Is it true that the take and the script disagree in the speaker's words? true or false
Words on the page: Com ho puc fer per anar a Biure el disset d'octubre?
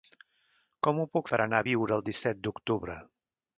true